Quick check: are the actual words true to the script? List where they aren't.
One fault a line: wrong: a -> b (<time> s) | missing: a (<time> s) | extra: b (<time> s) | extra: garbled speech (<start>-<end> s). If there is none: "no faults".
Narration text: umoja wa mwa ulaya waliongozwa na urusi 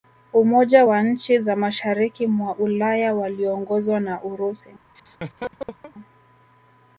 extra: nchi za mashariki (1.0 s)